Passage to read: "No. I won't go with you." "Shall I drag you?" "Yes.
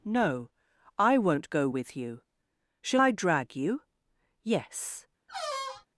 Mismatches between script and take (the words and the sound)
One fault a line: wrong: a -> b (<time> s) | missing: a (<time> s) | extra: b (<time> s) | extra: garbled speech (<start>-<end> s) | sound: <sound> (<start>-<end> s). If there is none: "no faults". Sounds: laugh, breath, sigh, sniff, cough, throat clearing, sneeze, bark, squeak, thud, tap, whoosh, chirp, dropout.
sound: squeak (5.3-5.9 s)